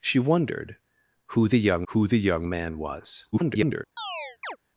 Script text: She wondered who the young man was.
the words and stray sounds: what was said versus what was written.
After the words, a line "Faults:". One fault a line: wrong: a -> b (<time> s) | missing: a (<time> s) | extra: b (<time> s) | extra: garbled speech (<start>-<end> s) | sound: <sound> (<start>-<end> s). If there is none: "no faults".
She wondered who the young who the young man was. [garbled]
Faults:
extra: who the young (1.9 s)
extra: garbled speech (3.3-3.8 s)
sound: chirp (4.0-4.6 s)